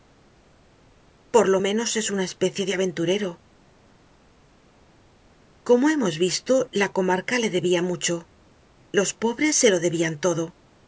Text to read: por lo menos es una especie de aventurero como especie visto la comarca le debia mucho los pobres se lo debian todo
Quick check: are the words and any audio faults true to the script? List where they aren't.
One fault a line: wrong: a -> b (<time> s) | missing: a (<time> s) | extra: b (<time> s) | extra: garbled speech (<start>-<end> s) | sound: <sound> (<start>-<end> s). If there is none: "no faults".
wrong: especie -> hemos (5.9 s)